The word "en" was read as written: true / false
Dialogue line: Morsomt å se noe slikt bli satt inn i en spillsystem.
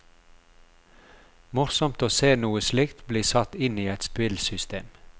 false